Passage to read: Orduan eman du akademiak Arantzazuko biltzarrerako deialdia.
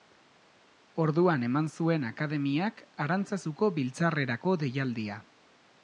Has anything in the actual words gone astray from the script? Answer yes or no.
yes